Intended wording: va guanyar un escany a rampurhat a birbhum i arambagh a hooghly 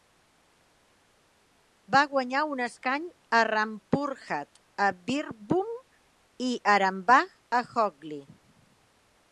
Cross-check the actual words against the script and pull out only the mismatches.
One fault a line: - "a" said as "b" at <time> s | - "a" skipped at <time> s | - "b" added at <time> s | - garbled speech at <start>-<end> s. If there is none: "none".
none